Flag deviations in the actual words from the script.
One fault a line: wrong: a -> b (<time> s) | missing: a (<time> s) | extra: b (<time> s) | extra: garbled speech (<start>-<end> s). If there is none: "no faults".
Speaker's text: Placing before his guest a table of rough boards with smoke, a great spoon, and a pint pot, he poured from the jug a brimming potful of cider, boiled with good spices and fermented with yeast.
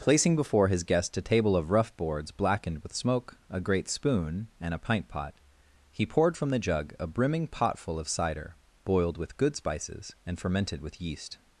extra: blackened (2.3 s)